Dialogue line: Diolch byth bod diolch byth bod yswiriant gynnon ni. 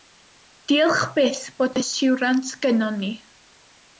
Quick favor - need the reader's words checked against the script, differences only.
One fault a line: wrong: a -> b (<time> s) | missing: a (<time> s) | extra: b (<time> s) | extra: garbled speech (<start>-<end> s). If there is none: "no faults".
missing: diolch byth bod (1.8 s)